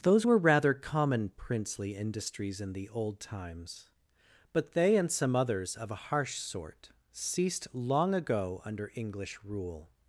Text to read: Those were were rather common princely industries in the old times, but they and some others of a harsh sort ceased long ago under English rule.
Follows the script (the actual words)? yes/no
no